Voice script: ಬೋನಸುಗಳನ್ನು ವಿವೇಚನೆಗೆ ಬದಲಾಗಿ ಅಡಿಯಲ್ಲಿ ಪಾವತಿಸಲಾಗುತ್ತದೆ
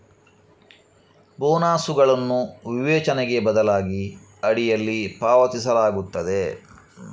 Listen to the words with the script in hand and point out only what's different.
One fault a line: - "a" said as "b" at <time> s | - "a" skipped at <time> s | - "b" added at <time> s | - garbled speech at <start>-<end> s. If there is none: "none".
none